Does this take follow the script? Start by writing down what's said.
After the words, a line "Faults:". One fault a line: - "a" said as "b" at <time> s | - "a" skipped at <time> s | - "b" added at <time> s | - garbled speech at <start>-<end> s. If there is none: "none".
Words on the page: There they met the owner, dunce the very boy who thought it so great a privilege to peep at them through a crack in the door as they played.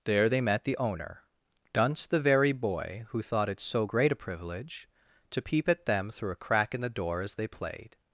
There they met the owner, dunce the very boy who thought it so great a privilege to peep at them through a crack in the door as they played.
Faults:
none